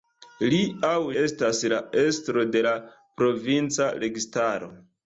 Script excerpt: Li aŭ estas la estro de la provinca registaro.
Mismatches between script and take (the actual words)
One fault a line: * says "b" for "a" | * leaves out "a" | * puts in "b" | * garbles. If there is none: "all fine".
all fine